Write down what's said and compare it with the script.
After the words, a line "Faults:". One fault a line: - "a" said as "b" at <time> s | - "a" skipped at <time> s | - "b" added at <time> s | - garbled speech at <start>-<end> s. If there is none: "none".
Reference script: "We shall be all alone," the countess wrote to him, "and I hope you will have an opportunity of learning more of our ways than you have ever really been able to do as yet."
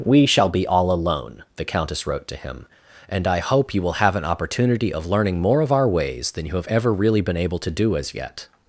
"We shall be all alone," the countess wrote to him, "and I hope you will have an opportunity of learning more of our ways than you have ever really been able to do as yet."
Faults:
none